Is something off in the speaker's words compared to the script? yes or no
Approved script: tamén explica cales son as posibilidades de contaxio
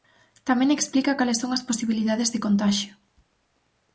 no